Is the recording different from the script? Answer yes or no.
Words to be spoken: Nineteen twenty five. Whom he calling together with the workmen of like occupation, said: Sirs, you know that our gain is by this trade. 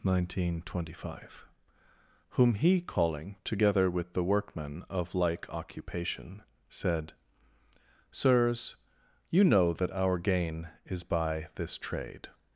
no